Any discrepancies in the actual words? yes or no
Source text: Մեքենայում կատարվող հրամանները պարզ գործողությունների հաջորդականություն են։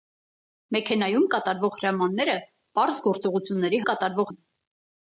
yes